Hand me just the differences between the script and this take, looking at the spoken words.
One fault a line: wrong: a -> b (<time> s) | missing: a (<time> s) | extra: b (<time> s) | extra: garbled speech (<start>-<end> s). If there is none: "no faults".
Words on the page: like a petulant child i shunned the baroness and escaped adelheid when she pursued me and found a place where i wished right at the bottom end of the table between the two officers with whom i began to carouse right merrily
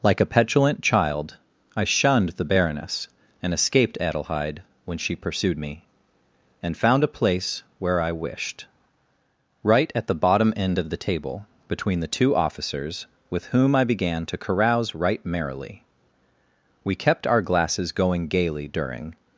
extra: we kept our glasses going gaily during (16.8 s)